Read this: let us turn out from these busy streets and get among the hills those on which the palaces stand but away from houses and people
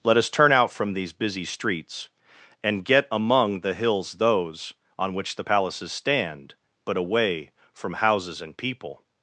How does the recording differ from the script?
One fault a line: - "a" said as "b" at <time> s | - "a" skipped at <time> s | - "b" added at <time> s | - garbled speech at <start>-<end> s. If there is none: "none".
none